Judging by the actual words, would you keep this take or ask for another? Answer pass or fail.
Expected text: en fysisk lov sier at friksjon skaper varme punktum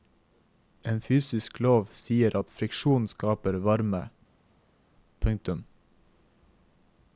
pass